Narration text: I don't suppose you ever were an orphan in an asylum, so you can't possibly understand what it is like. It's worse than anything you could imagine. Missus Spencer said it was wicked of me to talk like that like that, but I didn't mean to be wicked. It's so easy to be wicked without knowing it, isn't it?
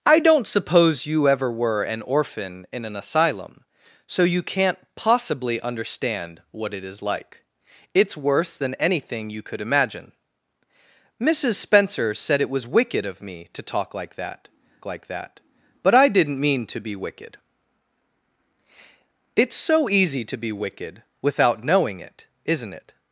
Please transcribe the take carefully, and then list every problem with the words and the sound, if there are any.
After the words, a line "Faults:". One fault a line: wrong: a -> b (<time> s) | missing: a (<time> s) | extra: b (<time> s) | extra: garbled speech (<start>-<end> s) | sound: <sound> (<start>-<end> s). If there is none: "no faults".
I don't suppose you ever were an orphan in an asylum, so you can't possibly understand what it is like. It's worse than anything you could imagine. Missus Spencer said it was wicked of me to talk like that like that, but I didn't mean to be wicked. It's so easy to be wicked without knowing it, isn't it?
Faults:
no faults